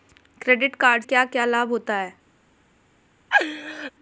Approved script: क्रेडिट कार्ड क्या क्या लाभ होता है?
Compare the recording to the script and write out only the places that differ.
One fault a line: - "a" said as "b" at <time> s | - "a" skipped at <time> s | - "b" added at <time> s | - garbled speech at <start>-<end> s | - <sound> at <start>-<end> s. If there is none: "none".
- laugh at 3.3-3.9 s